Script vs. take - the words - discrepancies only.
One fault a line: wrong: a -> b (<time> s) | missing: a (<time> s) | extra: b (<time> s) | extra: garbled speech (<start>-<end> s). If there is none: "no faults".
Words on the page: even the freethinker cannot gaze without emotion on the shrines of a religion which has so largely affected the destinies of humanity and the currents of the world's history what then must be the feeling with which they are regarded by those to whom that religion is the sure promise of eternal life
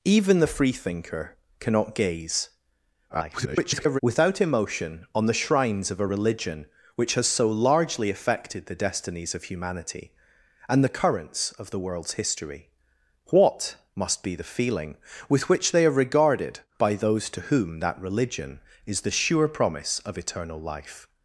extra: garbled speech (3.1-4.0 s)
missing: then (13.8 s)